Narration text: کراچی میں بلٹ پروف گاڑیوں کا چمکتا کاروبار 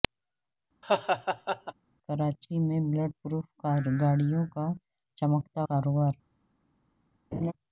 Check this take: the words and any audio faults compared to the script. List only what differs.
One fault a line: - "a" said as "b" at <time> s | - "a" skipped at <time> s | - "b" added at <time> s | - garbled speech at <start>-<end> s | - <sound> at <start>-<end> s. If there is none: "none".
- laugh at 0.8-1.7 s
- laugh at 7.3-7.5 s